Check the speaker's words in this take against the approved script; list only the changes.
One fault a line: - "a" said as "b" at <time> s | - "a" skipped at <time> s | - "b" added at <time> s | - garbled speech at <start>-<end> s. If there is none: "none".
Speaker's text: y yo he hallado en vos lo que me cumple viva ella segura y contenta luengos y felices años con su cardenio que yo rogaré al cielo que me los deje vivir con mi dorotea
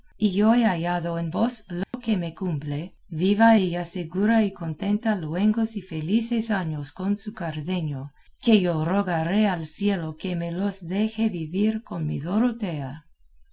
none